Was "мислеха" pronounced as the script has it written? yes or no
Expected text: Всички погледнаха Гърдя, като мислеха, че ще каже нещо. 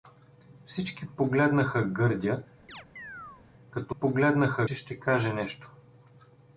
no